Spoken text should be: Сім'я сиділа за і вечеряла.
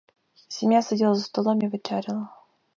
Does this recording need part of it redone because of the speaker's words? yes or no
yes